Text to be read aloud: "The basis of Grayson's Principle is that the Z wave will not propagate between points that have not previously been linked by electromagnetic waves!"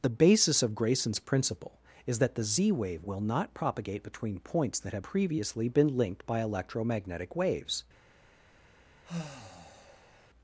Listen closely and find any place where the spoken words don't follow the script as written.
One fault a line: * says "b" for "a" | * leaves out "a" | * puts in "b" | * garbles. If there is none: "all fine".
* leaves out "not"